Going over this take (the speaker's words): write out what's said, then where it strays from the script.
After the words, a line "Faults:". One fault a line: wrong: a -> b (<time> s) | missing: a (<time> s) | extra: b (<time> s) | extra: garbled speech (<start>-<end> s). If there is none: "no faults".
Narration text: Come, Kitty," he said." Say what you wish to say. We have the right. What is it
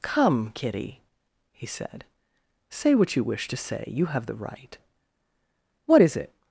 Come, Kitty," he said." Say what you wish to say. You have the right. What is it
Faults:
wrong: We -> You (3.9 s)